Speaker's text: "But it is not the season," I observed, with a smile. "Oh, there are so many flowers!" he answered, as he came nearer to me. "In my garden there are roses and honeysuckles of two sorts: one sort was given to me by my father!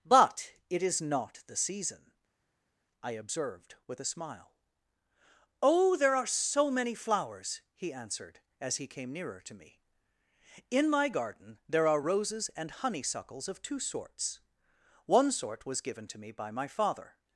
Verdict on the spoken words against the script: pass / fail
pass